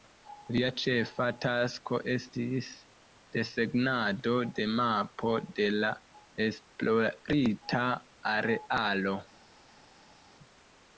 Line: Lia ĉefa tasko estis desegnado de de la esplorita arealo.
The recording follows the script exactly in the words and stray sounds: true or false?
false